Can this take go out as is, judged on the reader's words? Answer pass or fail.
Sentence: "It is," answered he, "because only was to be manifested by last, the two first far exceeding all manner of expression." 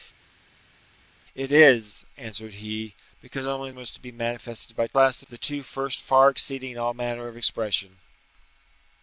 pass